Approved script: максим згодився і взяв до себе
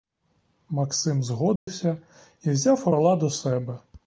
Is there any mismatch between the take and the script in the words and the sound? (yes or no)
yes